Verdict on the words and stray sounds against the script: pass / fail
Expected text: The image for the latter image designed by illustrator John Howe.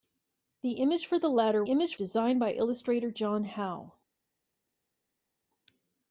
pass